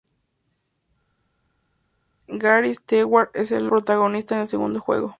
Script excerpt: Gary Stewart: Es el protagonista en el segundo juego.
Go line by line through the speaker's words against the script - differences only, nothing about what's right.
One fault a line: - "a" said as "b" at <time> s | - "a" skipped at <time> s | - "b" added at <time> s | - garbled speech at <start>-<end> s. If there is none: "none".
none